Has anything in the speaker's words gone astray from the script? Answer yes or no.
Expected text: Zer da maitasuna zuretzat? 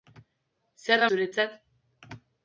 yes